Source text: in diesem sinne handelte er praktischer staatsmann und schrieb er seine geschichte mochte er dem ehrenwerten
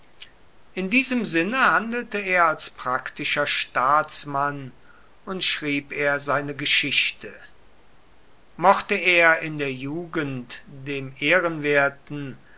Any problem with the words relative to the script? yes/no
yes